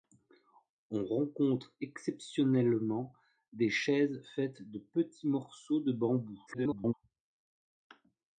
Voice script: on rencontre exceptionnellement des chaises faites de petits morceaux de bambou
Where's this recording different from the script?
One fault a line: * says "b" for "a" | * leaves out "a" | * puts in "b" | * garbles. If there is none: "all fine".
* garbles